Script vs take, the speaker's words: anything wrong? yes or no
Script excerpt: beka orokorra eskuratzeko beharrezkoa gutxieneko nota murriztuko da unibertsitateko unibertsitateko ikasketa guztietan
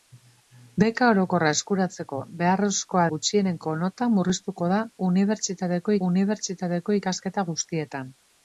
no